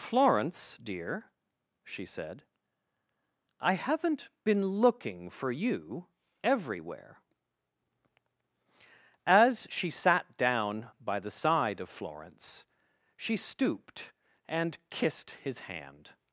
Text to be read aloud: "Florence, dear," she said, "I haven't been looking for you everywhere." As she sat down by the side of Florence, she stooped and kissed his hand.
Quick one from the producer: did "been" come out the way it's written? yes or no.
yes